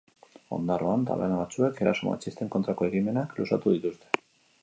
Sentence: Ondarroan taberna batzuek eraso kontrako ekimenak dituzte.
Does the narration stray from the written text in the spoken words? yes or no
yes